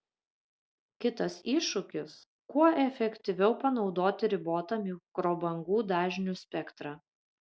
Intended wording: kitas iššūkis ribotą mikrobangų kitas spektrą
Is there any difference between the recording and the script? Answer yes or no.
yes